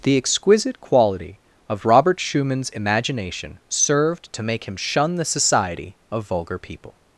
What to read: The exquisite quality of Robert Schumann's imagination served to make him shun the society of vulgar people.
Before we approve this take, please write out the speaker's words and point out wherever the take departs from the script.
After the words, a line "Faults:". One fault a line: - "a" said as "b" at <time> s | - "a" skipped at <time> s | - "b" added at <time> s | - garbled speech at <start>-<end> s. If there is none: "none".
The exquisite quality of Robert Schumann's imagination served to make him shun the society of vulgar people.
Faults:
none